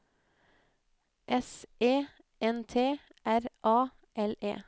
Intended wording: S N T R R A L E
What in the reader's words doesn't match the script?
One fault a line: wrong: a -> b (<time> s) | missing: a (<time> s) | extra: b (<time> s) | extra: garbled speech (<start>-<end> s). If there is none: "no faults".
extra: E (1.8 s)
missing: R (3.4 s)